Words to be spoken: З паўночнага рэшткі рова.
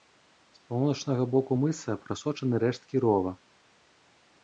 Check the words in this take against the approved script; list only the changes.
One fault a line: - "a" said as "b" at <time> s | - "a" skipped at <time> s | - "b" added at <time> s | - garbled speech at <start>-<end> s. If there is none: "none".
- "боку мыса прасочаны" added at 1.3 s